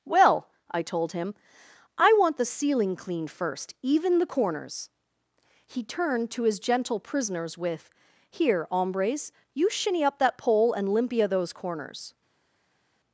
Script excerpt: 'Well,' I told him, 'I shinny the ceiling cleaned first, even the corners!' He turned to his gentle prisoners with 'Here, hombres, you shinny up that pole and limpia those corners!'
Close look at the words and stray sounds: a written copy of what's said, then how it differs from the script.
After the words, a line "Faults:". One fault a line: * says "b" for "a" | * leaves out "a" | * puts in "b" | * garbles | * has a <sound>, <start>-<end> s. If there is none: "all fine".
'Well,' I told him, 'I want the ceiling cleaned first, even the corners!' He turned to his gentle prisoners with 'Here, hombres, you shinny up that pole and limpia those corners!'
Faults:
* says "want" for "shinny"